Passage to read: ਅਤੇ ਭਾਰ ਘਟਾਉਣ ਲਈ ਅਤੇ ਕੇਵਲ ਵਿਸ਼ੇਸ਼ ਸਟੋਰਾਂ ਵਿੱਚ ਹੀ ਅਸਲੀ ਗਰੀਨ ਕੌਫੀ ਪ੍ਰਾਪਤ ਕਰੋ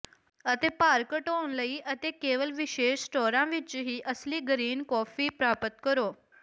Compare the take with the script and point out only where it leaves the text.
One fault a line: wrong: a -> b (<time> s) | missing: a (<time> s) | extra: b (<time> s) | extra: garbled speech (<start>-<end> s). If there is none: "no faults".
no faults